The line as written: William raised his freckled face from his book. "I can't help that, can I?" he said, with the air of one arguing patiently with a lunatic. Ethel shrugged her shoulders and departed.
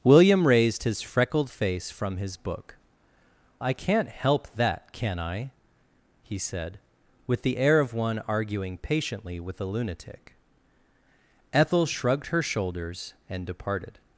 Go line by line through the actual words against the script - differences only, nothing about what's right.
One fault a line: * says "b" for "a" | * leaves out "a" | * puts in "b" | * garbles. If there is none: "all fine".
all fine